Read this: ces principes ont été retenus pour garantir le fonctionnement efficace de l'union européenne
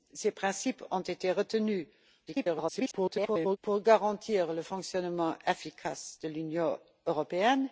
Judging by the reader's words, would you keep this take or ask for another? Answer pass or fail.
fail